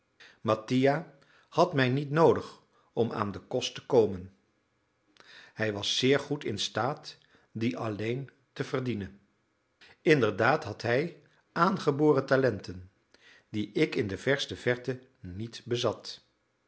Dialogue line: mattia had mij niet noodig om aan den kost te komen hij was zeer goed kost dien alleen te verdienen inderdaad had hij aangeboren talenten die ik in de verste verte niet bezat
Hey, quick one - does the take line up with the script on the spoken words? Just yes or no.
no